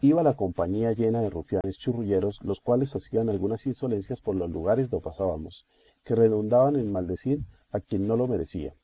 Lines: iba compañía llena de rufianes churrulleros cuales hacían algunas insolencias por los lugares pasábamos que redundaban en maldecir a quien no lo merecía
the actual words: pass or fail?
fail